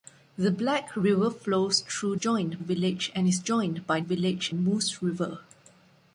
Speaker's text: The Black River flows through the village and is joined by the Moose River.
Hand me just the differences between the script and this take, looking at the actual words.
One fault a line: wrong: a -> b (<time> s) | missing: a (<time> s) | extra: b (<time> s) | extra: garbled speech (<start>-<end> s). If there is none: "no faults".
wrong: the -> joined (2.1 s)
wrong: the -> village (4.0 s)